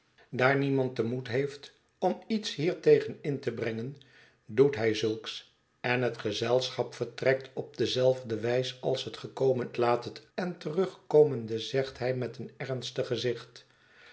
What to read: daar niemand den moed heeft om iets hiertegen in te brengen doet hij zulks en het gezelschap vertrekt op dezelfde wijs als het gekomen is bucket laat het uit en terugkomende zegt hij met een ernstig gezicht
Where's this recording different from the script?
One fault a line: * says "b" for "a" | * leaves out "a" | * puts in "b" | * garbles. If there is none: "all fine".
* leaves out "is bucket"
* leaves out "uit"